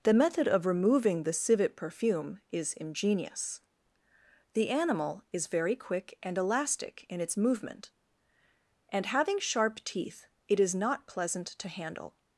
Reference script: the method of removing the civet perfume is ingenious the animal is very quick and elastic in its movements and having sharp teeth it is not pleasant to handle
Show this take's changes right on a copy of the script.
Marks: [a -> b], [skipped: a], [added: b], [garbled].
the method of removing the civet perfume is ingenious the animal is very quick and elastic in its [movements -> movement] and having sharp teeth it is not pleasant to handle